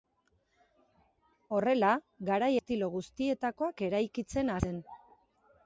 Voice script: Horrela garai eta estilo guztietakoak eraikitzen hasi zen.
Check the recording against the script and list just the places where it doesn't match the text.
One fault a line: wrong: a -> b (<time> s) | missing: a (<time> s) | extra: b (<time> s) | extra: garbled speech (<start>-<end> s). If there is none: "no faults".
missing: eta (2.5 s)
missing: hasi (4.6 s)